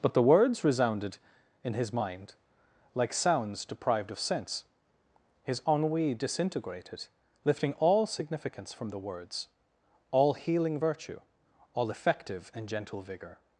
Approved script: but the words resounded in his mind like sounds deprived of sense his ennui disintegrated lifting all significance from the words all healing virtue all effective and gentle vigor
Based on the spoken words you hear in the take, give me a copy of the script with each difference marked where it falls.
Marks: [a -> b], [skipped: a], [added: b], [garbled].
but the words resounded in his mind like sounds deprived of sense his ennui disintegrated lifting all significance from the words all healing virtue all effective and gentle vigor